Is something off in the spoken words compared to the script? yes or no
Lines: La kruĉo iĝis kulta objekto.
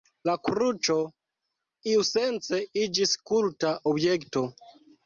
yes